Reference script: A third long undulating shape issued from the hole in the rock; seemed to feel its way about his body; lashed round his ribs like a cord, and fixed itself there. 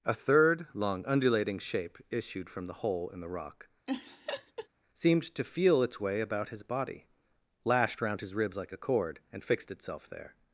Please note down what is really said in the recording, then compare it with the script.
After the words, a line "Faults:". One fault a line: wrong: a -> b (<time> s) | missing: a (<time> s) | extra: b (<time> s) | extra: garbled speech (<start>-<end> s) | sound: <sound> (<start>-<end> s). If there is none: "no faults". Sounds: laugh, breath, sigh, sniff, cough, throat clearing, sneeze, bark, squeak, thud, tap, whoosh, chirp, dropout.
A third long undulating shape issued from the hole in the rock; seemed to feel its way about his body; lashed round his ribs like a cord, and fixed itself there.
Faults:
sound: laugh (3.9-4.7 s)